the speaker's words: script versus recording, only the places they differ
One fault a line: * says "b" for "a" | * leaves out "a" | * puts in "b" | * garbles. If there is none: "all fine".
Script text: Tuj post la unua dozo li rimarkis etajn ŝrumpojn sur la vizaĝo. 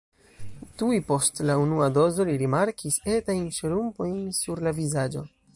all fine